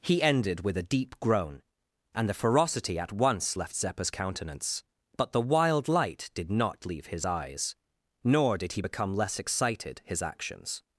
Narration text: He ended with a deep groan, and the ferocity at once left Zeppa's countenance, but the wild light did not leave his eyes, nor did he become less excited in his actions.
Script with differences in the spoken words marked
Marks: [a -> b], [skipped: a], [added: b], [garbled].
He ended with a deep groan, and the ferocity at once left Zeppa's countenance, but the wild light did not leave his eyes, nor did he become less excited [skipped: in] his actions.